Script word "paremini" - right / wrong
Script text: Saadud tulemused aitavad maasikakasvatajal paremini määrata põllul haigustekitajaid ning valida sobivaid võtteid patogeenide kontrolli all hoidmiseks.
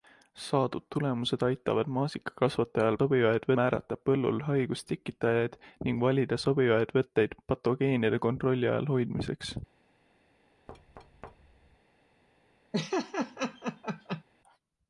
wrong